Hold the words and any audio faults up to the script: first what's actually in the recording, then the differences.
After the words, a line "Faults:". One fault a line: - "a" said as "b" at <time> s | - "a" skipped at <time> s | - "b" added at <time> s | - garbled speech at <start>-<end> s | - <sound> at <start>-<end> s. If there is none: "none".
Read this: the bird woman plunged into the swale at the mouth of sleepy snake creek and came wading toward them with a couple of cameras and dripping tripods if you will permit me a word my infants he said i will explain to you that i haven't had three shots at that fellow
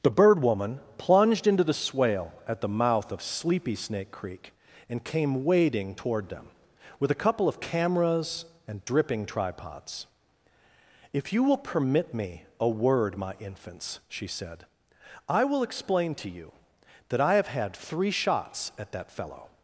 the bird woman plunged into the swale at the mouth of sleepy snake creek and came wading toward them with a couple of cameras and dripping tripods if you will permit me a word my infants she said i will explain to you that i have had three shots at that fellow
Faults:
- "he" said as "she" at 14.1 s
- "haven't" said as "have" at 17.3 s